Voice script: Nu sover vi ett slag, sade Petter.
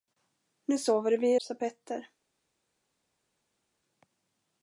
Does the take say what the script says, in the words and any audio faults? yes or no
no